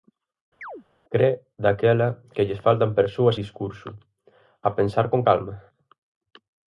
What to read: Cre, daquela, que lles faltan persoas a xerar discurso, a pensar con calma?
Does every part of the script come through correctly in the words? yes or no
no